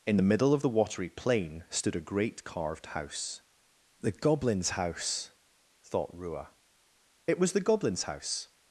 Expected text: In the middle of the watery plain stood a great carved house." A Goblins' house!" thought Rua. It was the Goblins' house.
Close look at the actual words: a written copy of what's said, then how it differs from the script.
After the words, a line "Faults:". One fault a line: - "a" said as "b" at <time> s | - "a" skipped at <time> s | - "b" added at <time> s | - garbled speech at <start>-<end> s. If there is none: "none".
In the middle of the watery plain stood a great carved house." The Goblins' house!" thought Rua. It was the Goblins' house.
Faults:
- "A" said as "The" at 4.0 s